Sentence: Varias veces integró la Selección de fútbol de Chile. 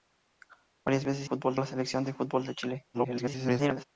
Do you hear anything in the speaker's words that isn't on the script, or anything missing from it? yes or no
yes